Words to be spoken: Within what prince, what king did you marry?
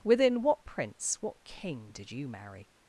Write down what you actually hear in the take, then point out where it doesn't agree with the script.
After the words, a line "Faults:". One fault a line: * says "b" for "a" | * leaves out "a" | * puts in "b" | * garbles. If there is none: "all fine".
Within what prince, what king did you marry?
Faults:
all fine